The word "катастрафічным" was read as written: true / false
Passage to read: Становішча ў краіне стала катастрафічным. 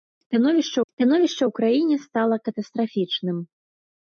true